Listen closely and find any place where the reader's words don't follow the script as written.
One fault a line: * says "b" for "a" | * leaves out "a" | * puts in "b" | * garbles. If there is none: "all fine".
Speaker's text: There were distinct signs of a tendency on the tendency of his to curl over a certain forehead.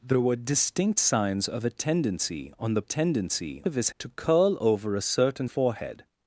all fine